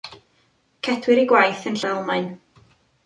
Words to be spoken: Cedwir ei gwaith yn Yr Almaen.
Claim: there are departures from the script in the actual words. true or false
false